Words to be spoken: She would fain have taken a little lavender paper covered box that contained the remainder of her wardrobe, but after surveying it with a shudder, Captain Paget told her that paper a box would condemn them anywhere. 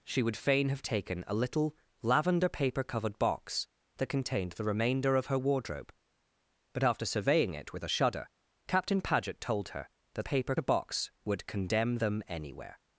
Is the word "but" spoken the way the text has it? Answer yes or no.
yes